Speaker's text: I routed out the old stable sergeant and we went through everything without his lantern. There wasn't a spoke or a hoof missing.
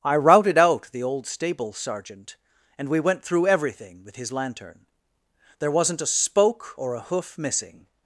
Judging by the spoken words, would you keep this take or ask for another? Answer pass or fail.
fail